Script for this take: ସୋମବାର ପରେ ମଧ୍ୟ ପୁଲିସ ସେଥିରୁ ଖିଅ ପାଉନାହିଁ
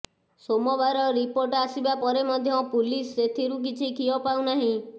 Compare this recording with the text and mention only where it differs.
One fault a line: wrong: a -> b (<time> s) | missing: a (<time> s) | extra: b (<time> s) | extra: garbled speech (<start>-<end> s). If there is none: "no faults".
extra: ରିପୋର୍ଟ ଆସିବା (1.2 s)
extra: କିଛି (3.7 s)